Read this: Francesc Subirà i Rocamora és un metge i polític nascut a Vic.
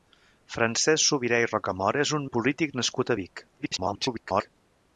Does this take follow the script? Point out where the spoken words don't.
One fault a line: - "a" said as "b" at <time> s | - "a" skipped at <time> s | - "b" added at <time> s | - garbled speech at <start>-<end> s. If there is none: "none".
- "metge" skipped at 2.3 s
- garbled speech at 3.6-4.5 s